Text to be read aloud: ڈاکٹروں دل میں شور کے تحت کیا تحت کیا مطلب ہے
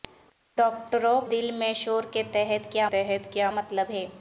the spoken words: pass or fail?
pass